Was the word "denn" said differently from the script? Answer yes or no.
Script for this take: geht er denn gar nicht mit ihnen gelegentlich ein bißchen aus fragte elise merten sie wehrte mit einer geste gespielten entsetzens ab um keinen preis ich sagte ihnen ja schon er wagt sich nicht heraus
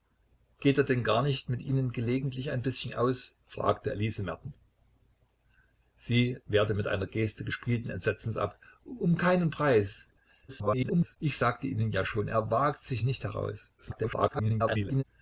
no